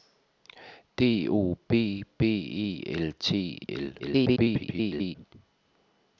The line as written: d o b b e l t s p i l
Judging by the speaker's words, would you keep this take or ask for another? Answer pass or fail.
fail